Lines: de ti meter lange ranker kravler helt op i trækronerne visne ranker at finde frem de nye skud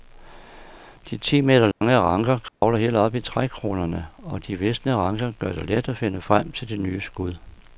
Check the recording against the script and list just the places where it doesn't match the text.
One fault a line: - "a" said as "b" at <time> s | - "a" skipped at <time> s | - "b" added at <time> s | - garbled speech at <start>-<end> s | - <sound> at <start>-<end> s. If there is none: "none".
- dropout at 1.7-1.8 s
- dropout at 2.5-2.6 s
- "og de" added at 4.2 s
- "gør det let" added at 5.4 s
- "til" added at 6.5 s